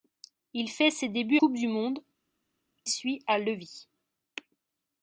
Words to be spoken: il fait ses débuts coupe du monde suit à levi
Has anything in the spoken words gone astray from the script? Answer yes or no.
no